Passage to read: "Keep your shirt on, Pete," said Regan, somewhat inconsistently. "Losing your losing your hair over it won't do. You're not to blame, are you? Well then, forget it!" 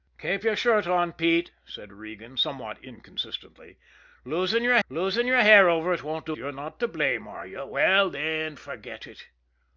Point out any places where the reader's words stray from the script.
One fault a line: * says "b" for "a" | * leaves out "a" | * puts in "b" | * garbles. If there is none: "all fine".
all fine